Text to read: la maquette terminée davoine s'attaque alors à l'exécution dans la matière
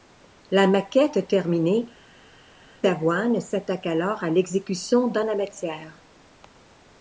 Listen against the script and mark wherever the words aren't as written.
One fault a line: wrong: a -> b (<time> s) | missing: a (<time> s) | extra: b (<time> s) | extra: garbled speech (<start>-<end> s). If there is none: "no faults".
no faults